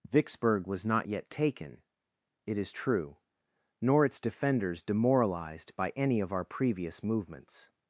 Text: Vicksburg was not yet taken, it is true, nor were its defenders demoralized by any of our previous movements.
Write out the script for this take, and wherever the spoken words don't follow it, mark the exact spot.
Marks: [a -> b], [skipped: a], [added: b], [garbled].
Vicksburg was not yet taken, it is true, nor [skipped: were] its defenders demoralized by any of our previous movements.